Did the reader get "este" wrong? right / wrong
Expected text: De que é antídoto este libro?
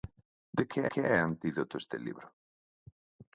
right